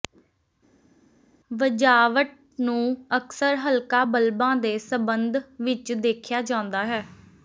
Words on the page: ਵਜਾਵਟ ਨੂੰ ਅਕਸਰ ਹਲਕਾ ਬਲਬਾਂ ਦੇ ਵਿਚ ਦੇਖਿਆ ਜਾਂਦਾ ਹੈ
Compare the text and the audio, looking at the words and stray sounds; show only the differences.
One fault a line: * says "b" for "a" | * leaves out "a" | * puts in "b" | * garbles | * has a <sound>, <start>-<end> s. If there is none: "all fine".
* puts in "ਸਬੰਧ"